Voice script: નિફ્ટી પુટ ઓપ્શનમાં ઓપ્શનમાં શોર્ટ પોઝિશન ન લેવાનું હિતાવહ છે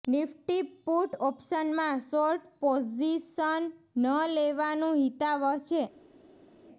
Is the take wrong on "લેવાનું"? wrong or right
right